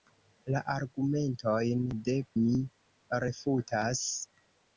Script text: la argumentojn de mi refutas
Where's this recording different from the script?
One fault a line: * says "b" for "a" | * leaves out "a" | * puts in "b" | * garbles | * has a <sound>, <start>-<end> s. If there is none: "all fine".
all fine